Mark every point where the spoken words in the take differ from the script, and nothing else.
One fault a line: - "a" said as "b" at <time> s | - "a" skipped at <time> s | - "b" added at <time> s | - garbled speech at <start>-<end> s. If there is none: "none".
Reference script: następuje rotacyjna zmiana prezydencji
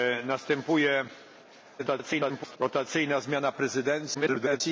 - garbled speech at 1.8-2.6 s
- garbled speech at 4.1-4.6 s